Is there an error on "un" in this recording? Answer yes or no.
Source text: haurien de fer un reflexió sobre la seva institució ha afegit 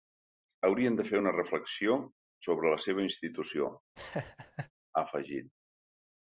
yes